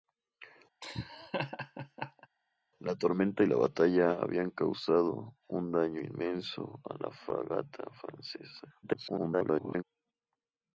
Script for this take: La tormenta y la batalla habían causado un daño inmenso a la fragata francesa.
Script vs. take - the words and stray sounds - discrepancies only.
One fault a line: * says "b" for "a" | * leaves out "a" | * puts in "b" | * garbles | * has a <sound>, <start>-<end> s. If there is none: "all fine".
* has a laugh, 0.8-2.3 s
* garbles